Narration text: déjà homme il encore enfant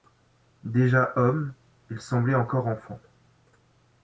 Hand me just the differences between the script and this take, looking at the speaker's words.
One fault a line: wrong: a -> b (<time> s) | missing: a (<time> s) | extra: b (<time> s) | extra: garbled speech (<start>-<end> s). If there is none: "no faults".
extra: semblait (2.0 s)